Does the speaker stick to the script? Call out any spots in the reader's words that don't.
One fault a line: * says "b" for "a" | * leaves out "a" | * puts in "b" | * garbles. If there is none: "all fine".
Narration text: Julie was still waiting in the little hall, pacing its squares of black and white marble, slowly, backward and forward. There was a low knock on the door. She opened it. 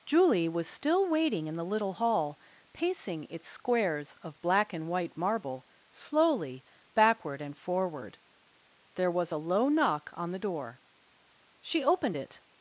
all fine